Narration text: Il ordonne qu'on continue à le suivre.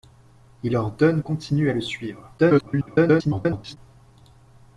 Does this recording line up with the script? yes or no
no